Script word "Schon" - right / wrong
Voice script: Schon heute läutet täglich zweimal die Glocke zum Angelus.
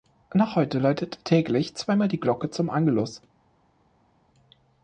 wrong